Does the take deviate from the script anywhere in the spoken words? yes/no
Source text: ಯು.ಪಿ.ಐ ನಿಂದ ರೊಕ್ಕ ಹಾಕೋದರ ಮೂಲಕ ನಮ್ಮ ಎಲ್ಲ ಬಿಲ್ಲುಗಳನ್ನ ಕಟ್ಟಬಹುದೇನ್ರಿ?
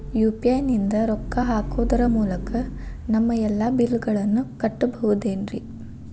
no